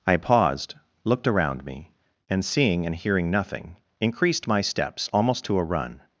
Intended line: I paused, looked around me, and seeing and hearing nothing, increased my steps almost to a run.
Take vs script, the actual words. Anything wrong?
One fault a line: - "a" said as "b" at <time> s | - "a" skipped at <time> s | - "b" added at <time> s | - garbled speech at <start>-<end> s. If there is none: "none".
none